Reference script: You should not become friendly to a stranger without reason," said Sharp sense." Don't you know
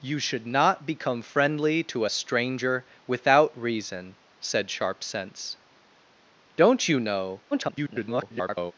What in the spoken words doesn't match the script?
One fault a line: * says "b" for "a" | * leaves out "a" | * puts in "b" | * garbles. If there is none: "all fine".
* garbles